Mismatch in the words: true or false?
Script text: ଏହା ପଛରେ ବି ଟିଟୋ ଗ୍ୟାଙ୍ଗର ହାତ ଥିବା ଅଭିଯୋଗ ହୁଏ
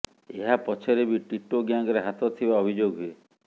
false